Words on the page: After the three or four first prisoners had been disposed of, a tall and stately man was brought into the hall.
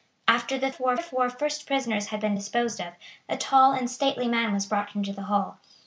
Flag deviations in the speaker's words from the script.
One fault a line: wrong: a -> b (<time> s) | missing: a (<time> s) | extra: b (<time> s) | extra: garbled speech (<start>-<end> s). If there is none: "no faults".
wrong: three -> four (0.7 s)